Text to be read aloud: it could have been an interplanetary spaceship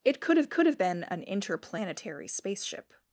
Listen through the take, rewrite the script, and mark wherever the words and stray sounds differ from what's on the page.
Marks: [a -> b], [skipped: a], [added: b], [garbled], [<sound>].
it could have [added: could have] been an interplanetary spaceship